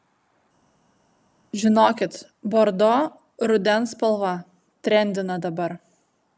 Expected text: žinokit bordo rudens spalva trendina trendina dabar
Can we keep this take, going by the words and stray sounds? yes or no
no